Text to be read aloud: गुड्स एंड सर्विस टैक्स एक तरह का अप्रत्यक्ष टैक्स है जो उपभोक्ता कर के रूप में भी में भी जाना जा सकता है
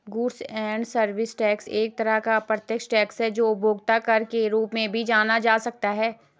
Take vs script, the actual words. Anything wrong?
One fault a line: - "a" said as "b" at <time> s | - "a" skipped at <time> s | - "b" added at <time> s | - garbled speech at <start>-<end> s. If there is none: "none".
- "में भी" skipped at 5.0 s